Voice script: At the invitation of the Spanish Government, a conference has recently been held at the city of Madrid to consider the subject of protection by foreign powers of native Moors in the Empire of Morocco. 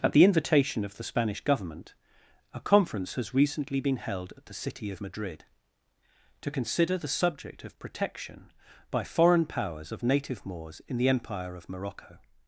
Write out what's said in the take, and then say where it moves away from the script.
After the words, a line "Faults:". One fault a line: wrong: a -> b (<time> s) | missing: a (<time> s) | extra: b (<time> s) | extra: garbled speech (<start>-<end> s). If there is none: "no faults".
At the invitation of the Spanish Government, a conference has recently been held at the city of Madrid to consider the subject of protection by foreign powers of native Moors in the Empire of Morocco.
Faults:
no faults